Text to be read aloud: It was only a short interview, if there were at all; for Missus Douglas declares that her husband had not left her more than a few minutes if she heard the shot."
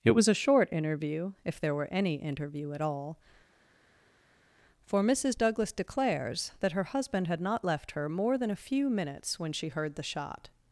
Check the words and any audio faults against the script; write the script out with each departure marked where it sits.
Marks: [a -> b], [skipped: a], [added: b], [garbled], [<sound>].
It was [skipped: only] a short interview, if there were [added: any interview] at all; for Missus Douglas declares that her husband had not left her more than a few minutes [if -> when] she heard the shot."